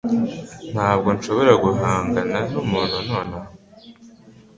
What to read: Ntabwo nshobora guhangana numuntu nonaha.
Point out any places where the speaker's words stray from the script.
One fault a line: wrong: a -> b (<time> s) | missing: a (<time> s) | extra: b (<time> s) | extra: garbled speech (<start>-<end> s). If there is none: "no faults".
no faults